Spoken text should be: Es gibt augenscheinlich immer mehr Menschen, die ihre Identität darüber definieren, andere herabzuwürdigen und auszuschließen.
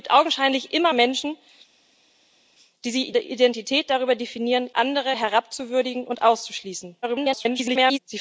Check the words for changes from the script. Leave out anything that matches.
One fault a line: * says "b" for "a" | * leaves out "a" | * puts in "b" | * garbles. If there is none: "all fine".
* leaves out "mehr"
* leaves out "ihre"
* garbles